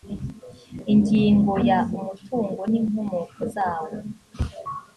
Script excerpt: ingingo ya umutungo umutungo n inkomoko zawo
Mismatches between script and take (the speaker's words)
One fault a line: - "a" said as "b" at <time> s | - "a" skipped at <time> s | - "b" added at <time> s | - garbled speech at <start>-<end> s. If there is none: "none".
- "umutungo" skipped at 2.6 s